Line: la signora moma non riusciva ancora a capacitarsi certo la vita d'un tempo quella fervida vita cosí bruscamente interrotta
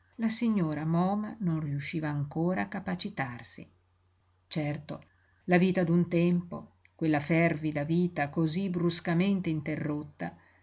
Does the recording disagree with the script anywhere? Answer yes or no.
no